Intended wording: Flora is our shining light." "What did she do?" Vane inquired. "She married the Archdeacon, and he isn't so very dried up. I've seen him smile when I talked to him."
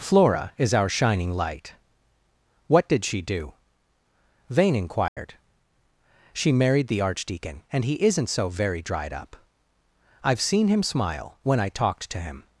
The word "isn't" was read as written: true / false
true